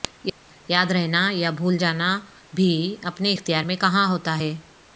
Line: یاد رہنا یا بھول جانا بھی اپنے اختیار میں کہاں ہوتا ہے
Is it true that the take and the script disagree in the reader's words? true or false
false